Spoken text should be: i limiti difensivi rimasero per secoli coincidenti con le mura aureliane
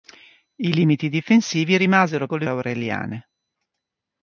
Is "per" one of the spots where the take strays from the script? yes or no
yes